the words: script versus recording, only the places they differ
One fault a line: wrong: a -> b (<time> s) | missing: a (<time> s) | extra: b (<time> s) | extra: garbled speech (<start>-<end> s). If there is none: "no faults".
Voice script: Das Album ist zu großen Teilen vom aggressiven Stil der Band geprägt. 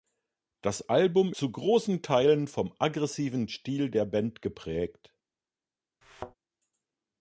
missing: ist (1.3 s)